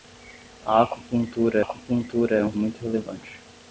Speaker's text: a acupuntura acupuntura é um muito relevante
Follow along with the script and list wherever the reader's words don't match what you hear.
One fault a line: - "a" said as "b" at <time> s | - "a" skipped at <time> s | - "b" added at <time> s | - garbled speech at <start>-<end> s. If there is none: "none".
none